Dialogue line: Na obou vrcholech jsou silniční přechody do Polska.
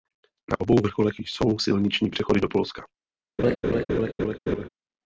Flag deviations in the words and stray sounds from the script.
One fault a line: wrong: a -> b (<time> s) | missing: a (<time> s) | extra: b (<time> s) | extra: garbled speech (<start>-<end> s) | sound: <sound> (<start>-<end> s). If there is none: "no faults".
sound: laugh (3.4-4.7 s)